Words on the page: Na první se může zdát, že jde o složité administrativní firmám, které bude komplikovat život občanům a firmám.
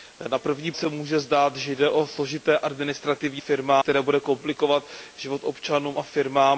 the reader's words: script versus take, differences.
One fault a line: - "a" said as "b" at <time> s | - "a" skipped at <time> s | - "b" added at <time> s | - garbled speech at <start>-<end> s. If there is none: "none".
none